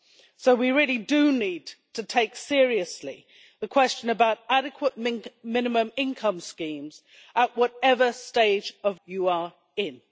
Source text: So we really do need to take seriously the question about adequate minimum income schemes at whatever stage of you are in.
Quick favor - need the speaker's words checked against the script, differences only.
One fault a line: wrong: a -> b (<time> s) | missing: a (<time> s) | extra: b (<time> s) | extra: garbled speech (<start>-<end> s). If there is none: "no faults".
no faults